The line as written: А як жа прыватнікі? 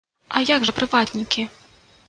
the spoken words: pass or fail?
pass